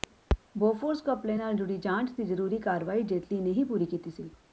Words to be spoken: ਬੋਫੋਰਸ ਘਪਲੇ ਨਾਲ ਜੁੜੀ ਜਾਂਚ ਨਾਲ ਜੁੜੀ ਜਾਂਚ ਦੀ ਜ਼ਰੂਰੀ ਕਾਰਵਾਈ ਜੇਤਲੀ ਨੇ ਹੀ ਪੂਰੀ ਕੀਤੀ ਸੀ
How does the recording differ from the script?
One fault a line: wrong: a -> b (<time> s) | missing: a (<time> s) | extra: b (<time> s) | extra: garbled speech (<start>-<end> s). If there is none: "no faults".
missing: ਨਾਲ ਜੁੜੀ ਜਾਂਚ (2.1 s)